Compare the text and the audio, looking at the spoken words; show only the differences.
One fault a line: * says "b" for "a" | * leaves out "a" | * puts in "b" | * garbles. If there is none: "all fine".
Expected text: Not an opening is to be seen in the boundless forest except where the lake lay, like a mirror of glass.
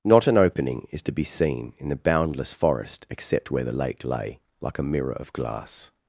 all fine